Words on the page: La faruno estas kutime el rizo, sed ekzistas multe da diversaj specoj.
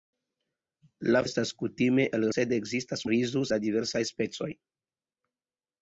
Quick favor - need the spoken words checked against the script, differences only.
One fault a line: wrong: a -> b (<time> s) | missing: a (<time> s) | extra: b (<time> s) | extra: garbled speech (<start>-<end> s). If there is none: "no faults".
missing: faruno (1.2 s)
missing: rizo (2.3 s)
wrong: multe -> rizo (3.1 s)